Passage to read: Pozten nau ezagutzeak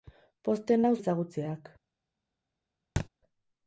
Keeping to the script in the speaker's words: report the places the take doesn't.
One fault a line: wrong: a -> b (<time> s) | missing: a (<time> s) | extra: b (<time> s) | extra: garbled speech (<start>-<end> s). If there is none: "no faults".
no faults